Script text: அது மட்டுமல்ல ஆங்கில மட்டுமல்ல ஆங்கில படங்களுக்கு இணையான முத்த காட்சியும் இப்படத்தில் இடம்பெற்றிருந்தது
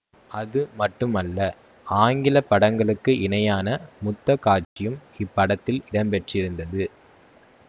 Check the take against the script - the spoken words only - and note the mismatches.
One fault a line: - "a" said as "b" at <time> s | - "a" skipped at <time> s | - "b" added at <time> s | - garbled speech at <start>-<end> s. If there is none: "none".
- "மட்டுமல்ல ஆங்கில" skipped at 2.4 s